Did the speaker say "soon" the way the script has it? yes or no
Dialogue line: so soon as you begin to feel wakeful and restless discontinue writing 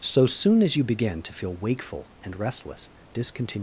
yes